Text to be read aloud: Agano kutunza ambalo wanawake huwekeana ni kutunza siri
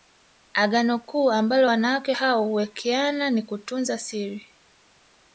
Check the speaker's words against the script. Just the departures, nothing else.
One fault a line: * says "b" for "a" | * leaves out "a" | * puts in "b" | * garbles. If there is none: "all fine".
* says "kuu" for "kutunza"
* puts in "hao"